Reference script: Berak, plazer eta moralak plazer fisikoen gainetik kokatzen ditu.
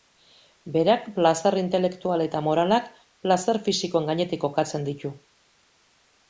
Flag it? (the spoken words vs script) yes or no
yes